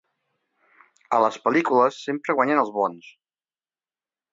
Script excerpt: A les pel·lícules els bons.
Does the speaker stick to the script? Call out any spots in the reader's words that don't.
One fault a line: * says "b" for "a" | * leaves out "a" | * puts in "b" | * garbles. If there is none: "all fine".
* puts in "sempre guanyen"